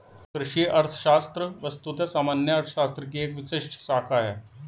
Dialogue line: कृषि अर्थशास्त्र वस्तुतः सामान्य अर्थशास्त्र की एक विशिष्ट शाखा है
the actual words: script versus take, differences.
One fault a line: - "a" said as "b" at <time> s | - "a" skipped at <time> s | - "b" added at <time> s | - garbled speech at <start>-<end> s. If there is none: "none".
none